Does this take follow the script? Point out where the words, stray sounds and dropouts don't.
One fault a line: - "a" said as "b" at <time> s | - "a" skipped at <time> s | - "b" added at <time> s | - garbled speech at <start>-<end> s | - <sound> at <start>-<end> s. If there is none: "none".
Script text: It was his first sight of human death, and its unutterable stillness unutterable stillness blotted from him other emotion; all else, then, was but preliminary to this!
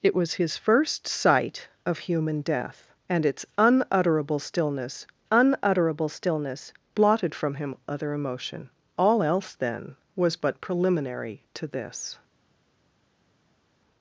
none